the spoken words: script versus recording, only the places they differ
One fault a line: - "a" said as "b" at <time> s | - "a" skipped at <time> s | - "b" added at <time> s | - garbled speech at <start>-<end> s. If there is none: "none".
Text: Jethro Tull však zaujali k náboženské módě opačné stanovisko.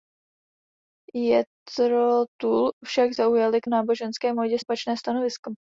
none